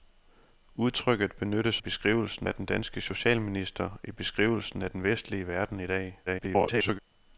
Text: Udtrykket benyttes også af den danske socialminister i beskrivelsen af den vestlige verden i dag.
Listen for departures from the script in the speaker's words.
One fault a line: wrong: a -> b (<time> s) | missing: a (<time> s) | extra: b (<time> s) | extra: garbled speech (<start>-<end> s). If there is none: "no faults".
wrong: også -> beskrivelsen (1.8 s)
extra: garbled speech (6.3-7.0 s)